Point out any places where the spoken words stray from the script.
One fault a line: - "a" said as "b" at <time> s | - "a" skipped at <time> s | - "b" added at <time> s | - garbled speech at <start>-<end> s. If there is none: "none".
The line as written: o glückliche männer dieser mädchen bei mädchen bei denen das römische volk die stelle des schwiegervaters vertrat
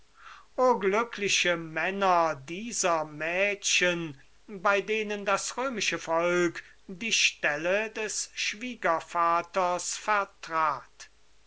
- "mädchen bei" skipped at 4.8 s